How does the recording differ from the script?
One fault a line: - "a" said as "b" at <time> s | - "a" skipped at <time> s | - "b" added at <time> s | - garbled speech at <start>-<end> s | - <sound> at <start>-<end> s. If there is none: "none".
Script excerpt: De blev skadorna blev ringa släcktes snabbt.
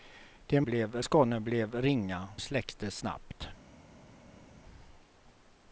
none